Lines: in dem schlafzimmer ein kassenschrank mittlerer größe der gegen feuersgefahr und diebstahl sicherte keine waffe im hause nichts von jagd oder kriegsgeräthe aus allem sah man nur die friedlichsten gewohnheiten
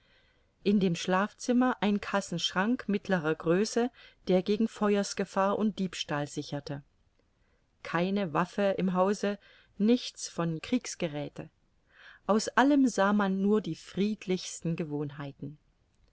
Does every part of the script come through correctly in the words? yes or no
no